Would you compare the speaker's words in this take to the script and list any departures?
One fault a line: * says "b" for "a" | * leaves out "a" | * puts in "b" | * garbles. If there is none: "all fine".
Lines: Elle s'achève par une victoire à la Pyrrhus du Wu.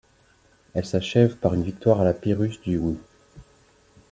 all fine